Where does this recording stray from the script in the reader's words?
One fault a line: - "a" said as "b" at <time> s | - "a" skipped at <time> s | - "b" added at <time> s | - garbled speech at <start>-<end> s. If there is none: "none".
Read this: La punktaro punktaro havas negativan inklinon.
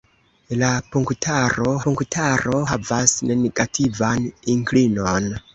none